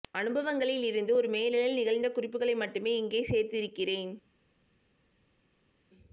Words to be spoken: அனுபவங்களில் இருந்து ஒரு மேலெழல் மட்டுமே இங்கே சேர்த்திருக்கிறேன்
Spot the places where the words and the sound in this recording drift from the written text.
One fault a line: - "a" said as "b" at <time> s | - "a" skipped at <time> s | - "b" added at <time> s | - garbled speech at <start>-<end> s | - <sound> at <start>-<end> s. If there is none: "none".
- "நிகழ்ந்த குறிப்புகளை" added at 1.8 s